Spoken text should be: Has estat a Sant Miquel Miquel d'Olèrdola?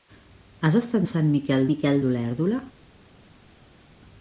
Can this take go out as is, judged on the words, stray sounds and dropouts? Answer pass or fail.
pass